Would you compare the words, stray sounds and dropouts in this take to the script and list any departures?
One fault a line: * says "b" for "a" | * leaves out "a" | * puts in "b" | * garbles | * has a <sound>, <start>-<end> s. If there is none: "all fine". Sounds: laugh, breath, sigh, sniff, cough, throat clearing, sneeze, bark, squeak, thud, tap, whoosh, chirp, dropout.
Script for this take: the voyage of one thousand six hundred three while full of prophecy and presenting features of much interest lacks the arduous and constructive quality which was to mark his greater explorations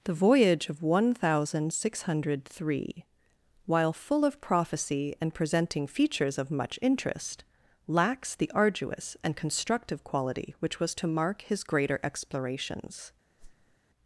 * has a whoosh, 13.4-13.8 s